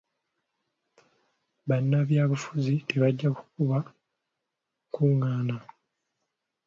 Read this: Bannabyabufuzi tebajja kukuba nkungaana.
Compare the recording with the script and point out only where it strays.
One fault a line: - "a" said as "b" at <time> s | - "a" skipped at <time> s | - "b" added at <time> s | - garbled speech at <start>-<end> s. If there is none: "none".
none